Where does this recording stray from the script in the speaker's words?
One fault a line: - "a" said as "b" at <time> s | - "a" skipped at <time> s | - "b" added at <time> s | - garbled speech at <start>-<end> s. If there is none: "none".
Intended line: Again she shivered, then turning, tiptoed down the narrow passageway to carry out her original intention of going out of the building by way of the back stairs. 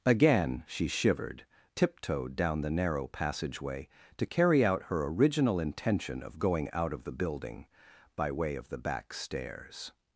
- "then turning" skipped at 1.4 s